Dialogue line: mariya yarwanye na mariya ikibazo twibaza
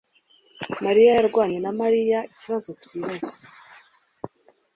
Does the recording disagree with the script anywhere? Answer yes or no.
no